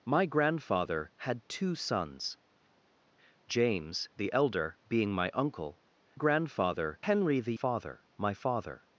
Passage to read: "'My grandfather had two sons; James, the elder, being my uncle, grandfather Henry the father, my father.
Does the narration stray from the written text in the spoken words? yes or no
no